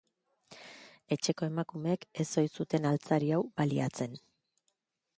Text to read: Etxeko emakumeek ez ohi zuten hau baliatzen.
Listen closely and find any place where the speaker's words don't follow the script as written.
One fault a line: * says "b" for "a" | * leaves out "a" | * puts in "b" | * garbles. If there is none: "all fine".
* puts in "altzari"